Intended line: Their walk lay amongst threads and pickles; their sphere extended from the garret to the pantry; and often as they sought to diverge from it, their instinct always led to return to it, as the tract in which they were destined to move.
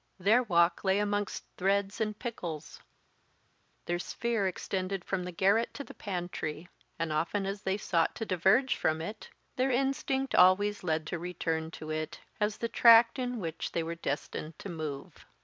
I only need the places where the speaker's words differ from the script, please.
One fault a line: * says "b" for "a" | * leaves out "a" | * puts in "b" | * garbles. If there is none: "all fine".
all fine